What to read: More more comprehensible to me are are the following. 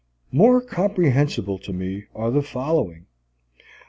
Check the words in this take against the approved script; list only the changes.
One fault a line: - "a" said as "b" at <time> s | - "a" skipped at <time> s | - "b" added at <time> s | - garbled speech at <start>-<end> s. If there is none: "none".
- "more" skipped at 0.6 s
- "are" skipped at 2.3 s